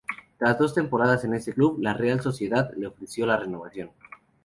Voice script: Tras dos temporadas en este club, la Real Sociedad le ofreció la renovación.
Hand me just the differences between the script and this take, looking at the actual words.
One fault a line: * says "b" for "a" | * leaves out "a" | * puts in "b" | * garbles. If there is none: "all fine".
all fine